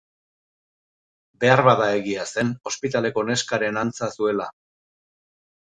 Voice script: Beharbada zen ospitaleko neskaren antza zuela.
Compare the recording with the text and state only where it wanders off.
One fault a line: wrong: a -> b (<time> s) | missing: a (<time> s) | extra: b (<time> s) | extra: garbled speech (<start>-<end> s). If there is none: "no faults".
extra: egia (2.0 s)